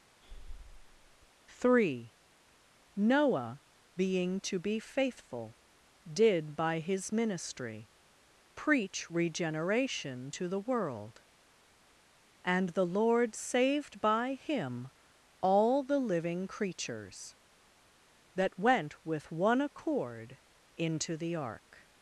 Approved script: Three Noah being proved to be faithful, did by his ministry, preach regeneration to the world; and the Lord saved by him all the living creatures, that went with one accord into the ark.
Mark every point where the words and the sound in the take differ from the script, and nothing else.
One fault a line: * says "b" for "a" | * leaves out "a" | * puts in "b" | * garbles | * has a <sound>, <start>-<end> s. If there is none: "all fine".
* has a breath, 0.2-1.3 s
* leaves out "proved"